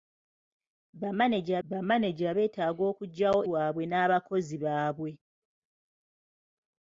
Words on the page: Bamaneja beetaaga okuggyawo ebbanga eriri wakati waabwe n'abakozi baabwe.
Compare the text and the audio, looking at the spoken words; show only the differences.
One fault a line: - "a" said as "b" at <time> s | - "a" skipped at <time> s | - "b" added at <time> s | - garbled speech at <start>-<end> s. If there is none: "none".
- "bamaneja" added at 1.7 s
- "ebbanga eriri wakati" skipped at 3.4 s